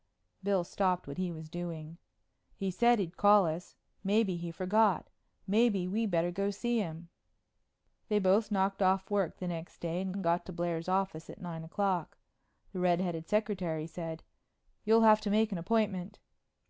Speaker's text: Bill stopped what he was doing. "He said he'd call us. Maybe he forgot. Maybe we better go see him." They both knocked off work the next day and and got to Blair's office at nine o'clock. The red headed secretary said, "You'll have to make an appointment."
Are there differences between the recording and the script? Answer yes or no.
no